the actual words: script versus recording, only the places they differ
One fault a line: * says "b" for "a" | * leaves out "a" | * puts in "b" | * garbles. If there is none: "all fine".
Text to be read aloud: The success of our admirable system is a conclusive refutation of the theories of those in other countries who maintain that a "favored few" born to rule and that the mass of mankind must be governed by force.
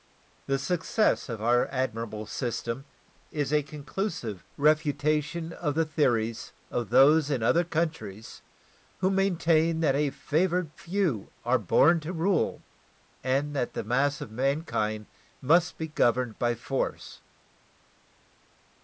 * puts in "are"